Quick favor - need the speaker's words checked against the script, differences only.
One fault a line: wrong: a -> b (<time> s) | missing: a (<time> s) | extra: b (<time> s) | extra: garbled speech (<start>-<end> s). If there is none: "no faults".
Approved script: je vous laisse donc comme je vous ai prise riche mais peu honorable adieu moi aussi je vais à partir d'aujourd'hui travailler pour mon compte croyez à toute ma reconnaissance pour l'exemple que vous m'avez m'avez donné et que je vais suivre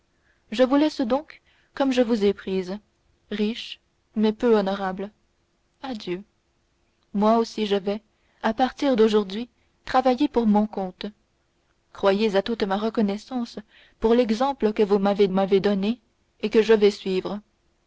no faults